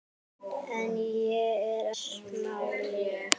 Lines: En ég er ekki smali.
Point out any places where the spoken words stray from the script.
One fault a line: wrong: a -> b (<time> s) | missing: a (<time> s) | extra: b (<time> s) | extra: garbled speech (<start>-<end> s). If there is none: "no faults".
missing: ekki (1.9 s)